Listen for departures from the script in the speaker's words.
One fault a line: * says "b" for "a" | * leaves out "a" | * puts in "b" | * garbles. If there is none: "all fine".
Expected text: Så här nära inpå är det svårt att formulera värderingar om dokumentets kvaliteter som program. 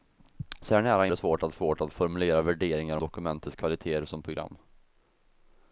* leaves out "inpå"
* puts in "svårt att"
* leaves out "om"